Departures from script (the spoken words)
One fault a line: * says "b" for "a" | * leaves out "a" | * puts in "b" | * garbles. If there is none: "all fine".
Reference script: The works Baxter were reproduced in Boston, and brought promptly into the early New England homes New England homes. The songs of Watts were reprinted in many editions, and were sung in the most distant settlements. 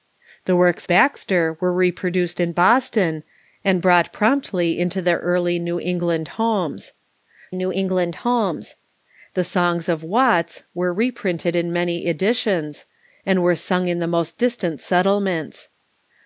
all fine